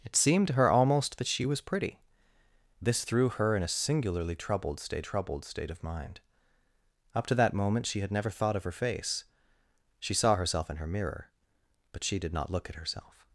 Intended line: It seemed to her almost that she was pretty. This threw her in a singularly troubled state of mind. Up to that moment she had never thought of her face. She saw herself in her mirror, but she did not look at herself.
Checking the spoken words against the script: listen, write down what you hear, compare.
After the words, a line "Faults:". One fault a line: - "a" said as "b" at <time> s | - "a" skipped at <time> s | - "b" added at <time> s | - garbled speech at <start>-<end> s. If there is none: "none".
It seemed to her almost that she was pretty. This threw her in a singularly troubled state troubled state of mind. Up to that moment she had never thought of her face. She saw herself in her mirror, but she did not look at herself.
Faults:
- "troubled state" added at 5.0 s